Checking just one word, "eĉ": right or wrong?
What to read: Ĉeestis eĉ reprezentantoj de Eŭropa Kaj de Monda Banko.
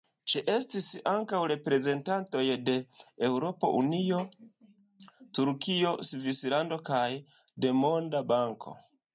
wrong